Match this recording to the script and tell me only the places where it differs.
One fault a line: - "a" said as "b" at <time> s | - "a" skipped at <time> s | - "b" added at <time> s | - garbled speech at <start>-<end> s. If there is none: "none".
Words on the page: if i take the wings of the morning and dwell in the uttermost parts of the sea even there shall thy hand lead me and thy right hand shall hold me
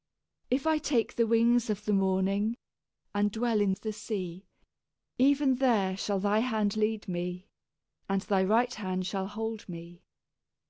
- "the uttermost parts" skipped at 3.7 s